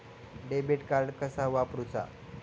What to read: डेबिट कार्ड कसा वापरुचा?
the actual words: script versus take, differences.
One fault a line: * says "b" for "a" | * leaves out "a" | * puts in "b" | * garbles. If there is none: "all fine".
all fine